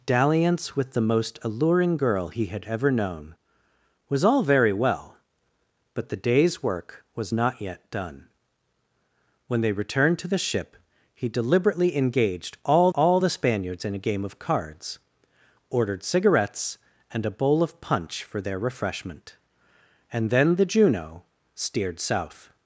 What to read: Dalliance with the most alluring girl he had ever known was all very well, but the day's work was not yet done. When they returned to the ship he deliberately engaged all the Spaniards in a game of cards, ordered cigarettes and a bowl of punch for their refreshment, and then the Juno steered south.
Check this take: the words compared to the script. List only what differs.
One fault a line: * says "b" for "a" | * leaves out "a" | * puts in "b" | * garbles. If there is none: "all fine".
* puts in "all"